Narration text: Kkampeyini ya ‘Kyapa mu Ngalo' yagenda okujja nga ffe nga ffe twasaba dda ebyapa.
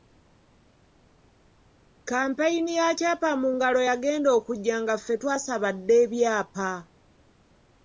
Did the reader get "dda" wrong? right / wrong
right